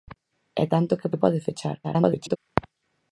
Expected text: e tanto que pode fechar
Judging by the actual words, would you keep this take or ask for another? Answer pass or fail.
fail